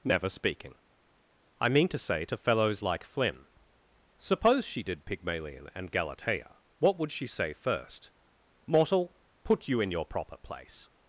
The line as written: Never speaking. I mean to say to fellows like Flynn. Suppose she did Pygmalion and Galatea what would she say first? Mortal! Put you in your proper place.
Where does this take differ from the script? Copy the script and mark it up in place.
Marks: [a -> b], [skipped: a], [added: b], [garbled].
Never speaking. I mean to say to fellows like Flynn. Suppose she did Pygmalion and Galatea what would she say first? Mortal! Put you in your proper place.